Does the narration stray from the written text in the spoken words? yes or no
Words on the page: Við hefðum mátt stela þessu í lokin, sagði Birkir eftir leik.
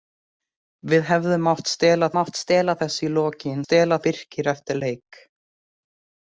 yes